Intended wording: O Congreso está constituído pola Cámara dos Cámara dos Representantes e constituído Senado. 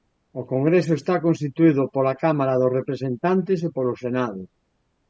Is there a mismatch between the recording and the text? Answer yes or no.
yes